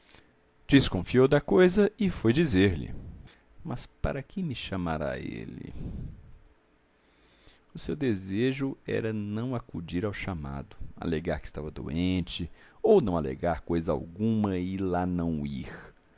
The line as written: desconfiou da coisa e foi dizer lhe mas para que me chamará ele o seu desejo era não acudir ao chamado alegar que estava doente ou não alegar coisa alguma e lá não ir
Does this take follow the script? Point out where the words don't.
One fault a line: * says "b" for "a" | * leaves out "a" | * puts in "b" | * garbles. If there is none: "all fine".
all fine